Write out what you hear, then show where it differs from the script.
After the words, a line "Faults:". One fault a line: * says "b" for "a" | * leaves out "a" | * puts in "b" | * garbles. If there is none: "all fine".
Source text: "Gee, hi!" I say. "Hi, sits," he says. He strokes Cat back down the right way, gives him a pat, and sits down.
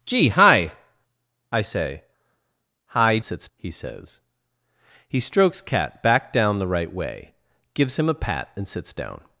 "Gee, hi!" I say. "Hi, sits," he says. He strokes Cat back down the right way, gives him a pat, and sits down.
Faults:
all fine